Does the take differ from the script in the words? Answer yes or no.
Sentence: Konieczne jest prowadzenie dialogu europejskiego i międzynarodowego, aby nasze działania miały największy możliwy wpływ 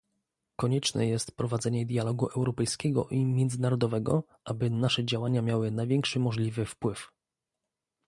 no